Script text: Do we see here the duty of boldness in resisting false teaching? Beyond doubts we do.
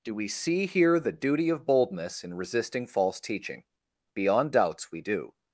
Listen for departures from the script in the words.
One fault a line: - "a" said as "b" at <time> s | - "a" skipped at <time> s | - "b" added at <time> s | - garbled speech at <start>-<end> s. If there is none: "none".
none